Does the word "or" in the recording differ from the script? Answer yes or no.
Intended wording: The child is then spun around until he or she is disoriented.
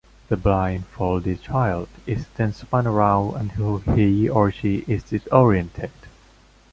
no